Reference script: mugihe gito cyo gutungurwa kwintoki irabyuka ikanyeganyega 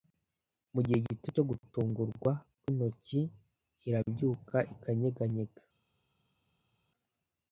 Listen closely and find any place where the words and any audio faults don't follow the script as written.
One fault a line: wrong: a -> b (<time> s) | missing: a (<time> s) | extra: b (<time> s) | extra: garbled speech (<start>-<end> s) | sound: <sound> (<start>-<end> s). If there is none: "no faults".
no faults